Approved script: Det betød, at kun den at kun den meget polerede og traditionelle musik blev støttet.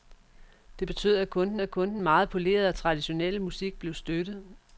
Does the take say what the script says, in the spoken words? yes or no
yes